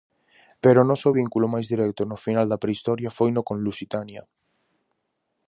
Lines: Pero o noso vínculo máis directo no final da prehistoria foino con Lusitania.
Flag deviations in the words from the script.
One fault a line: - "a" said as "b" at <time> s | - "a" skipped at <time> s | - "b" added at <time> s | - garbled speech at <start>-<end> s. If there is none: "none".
none